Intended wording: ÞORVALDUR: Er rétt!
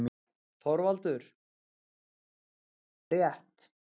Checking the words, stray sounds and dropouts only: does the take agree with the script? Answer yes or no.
yes